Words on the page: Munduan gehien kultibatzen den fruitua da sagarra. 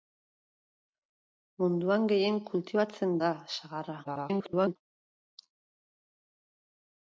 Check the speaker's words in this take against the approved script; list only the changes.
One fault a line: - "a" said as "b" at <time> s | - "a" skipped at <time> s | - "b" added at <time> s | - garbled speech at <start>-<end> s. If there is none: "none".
- "den fruitua" skipped at 3.1 s
- garbled speech at 4.0-4.8 s